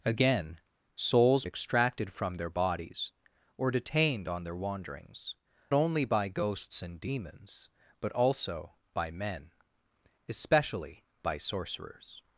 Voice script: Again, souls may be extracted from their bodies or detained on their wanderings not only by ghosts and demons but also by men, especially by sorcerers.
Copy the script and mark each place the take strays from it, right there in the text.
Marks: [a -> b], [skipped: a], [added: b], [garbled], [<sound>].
Again, souls [skipped: may be] extracted from their bodies or detained on their wanderings [skipped: not] only by ghosts and demons but also by men, especially by sorcerers.